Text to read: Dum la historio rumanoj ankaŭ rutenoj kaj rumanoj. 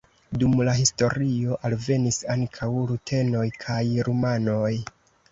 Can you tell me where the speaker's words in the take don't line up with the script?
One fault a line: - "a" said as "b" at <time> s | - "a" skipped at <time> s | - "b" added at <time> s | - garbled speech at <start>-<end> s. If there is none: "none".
- "rumanoj" said as "alvenis" at 1.7 s